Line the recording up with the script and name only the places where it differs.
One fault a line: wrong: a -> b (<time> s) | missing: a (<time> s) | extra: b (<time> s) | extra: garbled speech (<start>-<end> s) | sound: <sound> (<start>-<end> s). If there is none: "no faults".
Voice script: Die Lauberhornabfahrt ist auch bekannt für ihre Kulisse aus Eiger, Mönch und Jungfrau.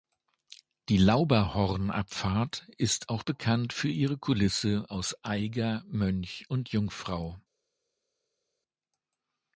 no faults